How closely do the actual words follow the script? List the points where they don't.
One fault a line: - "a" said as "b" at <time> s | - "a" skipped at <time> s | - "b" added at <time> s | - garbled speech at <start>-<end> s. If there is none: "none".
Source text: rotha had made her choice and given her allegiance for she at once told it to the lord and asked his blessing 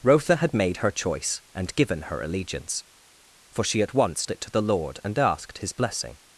- "told" skipped at 4.2 s